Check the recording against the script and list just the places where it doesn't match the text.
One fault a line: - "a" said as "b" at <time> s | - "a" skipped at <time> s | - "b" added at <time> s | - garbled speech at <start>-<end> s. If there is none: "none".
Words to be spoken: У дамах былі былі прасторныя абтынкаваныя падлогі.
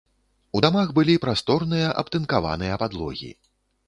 - "былі" skipped at 1.2 s